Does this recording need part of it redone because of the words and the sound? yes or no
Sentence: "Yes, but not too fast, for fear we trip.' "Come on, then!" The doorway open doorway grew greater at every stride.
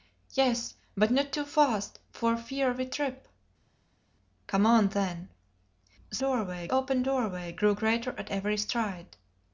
no